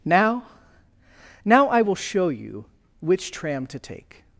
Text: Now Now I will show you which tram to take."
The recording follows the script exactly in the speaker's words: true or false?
true